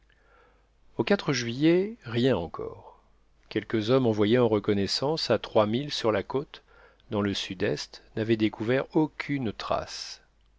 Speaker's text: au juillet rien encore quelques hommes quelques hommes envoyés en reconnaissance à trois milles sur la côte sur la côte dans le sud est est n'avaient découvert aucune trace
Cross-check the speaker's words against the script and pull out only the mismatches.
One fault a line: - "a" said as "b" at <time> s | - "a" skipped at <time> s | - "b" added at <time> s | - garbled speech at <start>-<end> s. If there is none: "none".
- "quelques hommes" skipped at 4.1 s
- "sur la côte" skipped at 6.6 s
- "est" skipped at 8.0 s